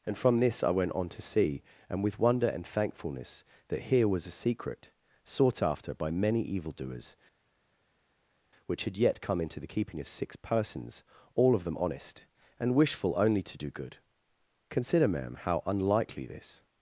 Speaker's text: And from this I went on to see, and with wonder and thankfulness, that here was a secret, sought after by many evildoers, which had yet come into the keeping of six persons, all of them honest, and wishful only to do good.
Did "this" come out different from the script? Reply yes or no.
no